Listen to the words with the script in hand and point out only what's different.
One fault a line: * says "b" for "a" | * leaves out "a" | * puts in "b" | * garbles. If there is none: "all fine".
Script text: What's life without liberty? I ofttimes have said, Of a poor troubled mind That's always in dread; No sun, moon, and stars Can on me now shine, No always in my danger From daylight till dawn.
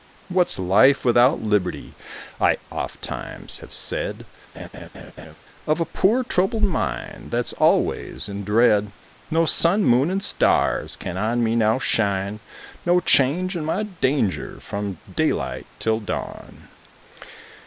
* says "change" for "always"